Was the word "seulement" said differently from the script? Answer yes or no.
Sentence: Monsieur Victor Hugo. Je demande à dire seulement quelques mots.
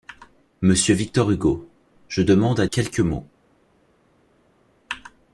yes